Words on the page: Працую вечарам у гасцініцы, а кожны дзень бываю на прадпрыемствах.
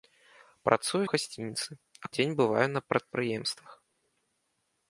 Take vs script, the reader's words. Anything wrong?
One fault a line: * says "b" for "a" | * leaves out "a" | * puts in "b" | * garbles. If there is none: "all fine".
* leaves out "вечарам"
* leaves out "кожны"